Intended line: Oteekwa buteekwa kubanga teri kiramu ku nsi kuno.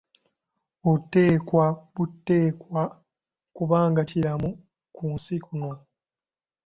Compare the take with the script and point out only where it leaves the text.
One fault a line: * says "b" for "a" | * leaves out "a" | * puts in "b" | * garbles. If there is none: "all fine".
* leaves out "teri"